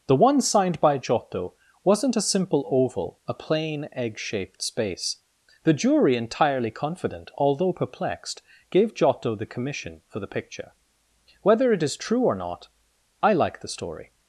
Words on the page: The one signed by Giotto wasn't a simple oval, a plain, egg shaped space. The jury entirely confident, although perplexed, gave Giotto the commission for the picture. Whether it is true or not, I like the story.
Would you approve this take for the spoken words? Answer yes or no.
yes